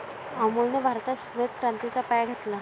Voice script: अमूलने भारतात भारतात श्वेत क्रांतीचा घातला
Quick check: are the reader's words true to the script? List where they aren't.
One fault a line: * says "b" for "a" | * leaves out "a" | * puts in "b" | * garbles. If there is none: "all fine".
* leaves out "भारतात"
* puts in "पाया"